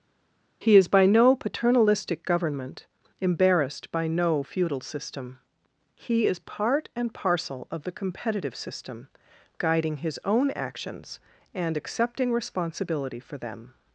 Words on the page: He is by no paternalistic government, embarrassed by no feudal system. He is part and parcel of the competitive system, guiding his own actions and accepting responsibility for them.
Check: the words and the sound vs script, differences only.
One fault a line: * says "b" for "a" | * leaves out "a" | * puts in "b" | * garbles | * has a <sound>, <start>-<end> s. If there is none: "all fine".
all fine